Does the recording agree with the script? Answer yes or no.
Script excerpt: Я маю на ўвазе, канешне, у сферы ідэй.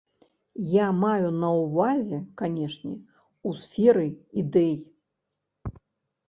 yes